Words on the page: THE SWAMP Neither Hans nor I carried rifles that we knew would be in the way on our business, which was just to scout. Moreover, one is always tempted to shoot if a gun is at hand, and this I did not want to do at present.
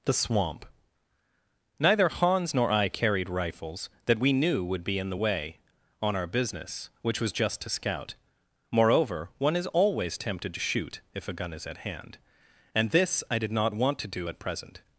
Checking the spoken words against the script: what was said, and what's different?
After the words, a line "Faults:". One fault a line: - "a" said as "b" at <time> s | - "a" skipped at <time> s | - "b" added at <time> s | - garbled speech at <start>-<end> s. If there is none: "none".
THE SWAMP Neither Hans nor I carried rifles that we knew would be in the way on our business, which was just to scout. Moreover, one is always tempted to shoot if a gun is at hand, and this I did not want to do at present.
Faults:
none